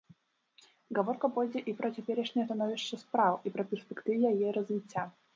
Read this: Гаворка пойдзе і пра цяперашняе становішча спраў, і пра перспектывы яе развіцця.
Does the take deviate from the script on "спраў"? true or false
false